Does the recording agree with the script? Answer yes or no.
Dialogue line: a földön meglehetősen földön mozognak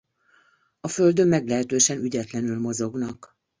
no